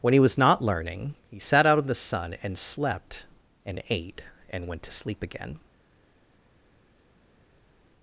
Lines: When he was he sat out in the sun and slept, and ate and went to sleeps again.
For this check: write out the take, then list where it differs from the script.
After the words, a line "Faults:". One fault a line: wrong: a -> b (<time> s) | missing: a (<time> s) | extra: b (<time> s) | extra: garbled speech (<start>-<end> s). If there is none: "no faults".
When he was not learning he sat out in the sun and slept, and ate and went to sleep again.
Faults:
extra: not learning (0.4 s)
wrong: sleeps -> sleep (4.9 s)